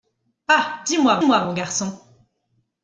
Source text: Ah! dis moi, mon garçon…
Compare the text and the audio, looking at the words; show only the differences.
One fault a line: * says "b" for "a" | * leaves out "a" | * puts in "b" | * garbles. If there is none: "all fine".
* puts in "moi"